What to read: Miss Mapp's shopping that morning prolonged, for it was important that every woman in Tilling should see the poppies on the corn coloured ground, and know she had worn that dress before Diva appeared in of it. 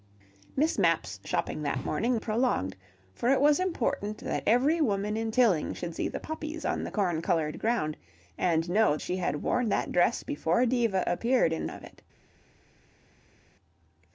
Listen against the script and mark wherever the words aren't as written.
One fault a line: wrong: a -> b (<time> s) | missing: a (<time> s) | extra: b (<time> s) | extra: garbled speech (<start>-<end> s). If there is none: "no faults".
no faults